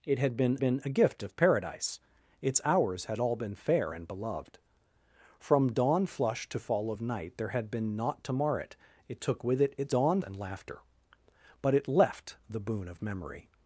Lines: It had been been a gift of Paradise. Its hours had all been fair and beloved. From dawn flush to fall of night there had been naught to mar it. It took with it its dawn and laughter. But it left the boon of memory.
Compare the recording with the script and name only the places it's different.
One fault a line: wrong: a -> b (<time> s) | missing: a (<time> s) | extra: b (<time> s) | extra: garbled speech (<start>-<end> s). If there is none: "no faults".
no faults